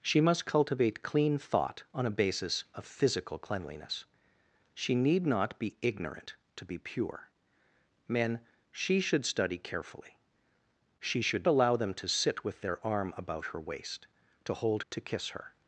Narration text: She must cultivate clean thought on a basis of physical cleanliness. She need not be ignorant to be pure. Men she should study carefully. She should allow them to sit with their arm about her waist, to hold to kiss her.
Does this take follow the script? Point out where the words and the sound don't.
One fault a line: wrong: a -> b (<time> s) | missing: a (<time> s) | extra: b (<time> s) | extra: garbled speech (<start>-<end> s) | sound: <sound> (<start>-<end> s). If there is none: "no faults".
no faults